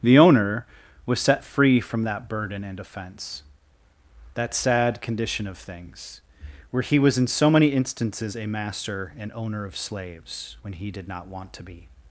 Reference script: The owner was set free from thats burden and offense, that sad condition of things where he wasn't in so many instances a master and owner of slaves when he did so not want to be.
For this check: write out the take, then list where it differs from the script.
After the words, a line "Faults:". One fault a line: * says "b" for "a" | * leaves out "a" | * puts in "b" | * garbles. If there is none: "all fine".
The owner was set free from that burden and offense, that sad condition of things where he was in so many instances a master and owner of slaves when he did not want to be.
Faults:
* says "that" for "thats"
* says "was" for "wasn't"
* leaves out "so"